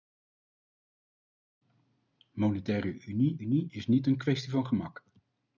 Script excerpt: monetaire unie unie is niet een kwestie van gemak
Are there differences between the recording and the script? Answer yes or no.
no